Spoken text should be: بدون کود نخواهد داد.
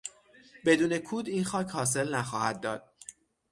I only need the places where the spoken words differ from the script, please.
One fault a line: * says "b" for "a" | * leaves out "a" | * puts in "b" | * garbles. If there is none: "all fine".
* puts in "این خاک حاصل"